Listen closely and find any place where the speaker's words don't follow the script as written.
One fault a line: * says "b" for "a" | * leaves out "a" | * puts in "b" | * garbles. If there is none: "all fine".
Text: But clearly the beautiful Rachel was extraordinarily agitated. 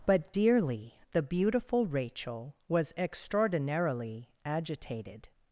* says "dearly" for "clearly"